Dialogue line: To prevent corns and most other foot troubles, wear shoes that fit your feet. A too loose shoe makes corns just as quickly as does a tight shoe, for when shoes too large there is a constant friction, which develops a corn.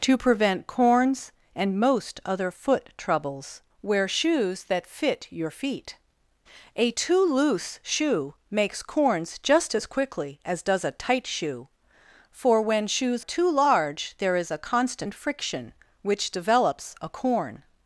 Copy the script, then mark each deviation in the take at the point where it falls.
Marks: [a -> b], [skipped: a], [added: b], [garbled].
To prevent corns and most other foot troubles, wear shoes that fit your feet. A too loose shoe makes corns just as quickly as does a tight shoe, for when shoes too large there is a constant friction, which develops a corn.